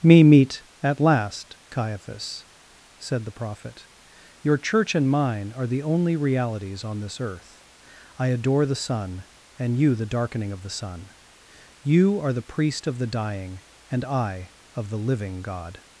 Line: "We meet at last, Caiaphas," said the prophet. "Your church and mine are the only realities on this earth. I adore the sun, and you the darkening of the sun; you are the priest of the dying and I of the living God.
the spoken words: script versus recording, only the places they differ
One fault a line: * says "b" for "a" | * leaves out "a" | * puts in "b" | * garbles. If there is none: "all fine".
* says "Me" for "We"